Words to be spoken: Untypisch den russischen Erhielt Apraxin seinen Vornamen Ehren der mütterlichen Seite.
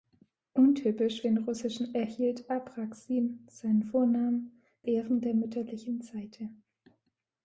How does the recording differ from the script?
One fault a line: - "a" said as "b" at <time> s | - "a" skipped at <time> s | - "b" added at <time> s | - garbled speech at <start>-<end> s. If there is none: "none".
none